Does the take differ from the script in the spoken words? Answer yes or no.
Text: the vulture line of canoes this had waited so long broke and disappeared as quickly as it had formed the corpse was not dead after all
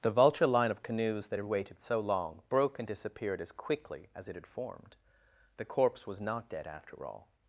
yes